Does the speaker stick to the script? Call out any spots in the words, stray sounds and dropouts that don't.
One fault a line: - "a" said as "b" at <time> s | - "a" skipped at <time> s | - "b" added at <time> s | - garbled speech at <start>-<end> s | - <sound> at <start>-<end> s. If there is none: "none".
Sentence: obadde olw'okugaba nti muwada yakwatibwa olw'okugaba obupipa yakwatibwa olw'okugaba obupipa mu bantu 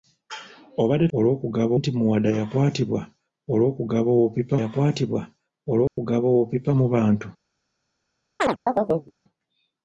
- dropout at 5.9-6.0 s
- chirp at 8.4-9.1 s